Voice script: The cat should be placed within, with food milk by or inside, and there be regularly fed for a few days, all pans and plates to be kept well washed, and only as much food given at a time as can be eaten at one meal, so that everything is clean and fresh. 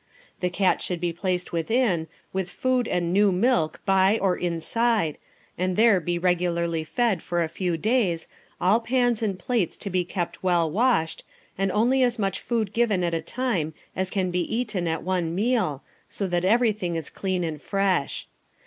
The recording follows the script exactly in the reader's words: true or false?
false